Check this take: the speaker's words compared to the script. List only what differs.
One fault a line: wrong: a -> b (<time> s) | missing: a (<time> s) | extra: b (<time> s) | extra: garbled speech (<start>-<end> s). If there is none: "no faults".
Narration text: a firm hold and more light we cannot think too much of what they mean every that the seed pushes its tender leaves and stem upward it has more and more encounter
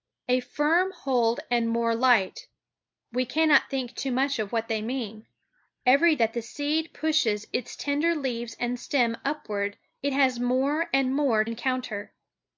no faults